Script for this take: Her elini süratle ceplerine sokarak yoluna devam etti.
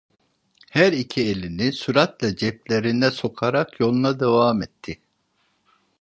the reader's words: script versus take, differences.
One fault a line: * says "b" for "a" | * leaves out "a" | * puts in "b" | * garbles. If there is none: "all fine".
* puts in "iki"